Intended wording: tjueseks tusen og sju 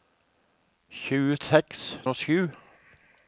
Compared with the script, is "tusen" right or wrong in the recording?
wrong